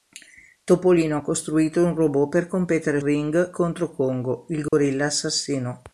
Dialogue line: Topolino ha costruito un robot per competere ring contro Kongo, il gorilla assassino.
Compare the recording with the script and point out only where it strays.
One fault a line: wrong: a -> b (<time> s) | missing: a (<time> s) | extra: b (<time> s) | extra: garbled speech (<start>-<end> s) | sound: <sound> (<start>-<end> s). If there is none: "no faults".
sound: dropout (4.7-4.7 s)